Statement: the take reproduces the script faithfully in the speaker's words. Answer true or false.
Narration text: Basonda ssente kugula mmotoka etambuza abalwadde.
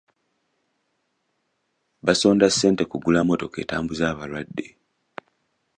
true